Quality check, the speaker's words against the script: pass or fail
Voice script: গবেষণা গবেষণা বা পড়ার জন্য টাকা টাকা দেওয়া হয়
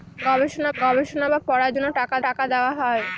pass